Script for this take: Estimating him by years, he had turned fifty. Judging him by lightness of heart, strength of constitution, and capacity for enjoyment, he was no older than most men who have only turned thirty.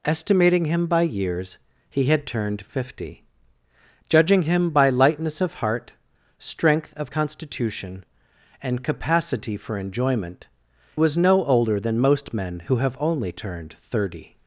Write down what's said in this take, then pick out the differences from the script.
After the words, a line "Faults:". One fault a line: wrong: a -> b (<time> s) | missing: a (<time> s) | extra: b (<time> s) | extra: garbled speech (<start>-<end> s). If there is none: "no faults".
Estimating him by years, he had turned fifty. Judging him by lightness of heart, strength of constitution, and capacity for enjoyment, was no older than most men who have only turned thirty.
Faults:
missing: he (10.5 s)